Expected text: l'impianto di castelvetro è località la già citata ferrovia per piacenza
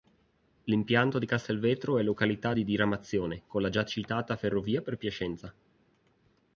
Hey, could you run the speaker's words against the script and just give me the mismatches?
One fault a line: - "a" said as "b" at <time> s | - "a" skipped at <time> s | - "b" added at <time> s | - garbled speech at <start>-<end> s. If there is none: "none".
- "di diramazione con" added at 2.5 s